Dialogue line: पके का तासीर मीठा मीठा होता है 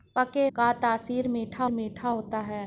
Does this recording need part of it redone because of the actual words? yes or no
no